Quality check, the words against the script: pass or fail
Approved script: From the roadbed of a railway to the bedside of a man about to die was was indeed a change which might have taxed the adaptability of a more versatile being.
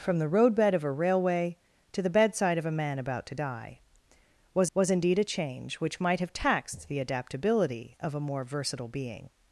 pass